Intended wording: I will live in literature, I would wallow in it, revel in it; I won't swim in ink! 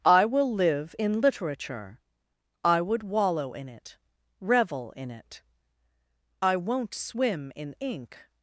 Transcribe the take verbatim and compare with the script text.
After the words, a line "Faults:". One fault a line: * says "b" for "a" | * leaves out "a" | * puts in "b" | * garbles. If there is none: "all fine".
I will live in literature, I would wallow in it, revel in it; I won't swim in ink!
Faults:
all fine